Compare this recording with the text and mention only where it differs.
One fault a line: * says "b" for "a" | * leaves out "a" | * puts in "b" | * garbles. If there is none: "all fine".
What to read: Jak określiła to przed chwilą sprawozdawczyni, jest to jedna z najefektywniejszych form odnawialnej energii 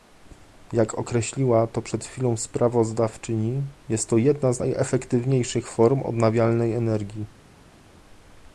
all fine